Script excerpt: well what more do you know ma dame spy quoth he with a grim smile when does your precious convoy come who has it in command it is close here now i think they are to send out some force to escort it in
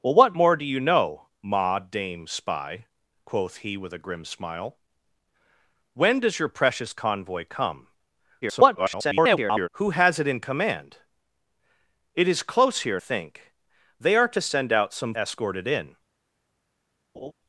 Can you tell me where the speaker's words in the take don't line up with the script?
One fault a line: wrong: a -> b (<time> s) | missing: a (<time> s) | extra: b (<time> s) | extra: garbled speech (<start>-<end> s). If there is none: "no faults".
extra: garbled speech (8.4-9.7 s)
missing: now i (13.0 s)
missing: force to (15.1 s)